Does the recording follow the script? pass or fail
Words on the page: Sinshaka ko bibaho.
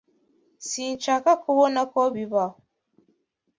fail